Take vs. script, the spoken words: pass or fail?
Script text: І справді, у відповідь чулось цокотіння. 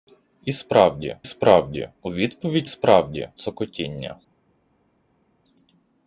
fail